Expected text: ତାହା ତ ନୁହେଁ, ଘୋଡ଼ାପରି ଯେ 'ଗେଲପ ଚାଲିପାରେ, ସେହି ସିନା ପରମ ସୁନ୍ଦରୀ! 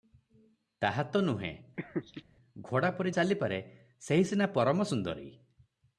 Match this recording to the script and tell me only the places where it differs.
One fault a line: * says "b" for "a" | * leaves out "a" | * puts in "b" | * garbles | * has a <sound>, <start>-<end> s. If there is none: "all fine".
* has a laugh, 1.8-2.2 s
* leaves out "ଯେ ଗେଲପ"